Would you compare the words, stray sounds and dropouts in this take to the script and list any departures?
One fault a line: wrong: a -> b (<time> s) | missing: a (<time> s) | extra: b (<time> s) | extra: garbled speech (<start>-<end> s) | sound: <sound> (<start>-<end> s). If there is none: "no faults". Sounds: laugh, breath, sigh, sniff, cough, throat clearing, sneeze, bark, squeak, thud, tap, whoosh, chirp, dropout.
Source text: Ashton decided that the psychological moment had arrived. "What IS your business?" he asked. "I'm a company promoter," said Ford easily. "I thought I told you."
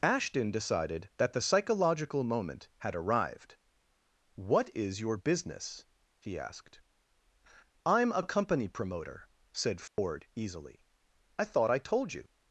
sound: dropout (9.9-10.0 s)